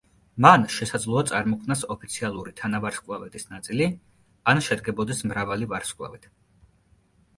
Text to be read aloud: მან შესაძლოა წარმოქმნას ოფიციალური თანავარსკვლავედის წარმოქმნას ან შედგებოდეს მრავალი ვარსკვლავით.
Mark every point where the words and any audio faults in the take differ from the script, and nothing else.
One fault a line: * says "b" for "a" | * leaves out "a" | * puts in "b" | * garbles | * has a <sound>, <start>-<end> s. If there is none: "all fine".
* says "ნაწილი" for "წარმოქმნას"